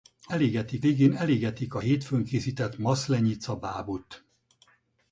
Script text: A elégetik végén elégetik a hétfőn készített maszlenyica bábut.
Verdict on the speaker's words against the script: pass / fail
pass